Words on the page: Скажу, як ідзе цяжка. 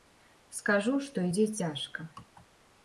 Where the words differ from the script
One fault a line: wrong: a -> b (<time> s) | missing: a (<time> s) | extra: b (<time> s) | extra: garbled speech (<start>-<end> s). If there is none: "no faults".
wrong: як -> што (1.1 s)